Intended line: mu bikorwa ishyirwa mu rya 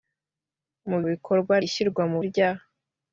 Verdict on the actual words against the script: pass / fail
pass